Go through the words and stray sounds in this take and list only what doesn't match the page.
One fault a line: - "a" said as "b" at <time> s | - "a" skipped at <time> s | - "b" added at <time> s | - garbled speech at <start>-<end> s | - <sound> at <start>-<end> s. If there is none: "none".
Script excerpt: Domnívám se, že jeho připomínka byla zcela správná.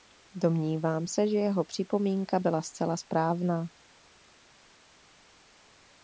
none